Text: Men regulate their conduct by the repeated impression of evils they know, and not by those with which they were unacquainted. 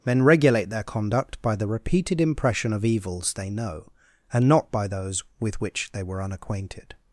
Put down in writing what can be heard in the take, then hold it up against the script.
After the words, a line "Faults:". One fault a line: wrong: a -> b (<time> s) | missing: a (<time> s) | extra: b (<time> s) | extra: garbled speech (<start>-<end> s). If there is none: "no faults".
Men regulate their conduct by the repeated impression of evils they know, and not by those with which they were unacquainted.
Faults:
no faults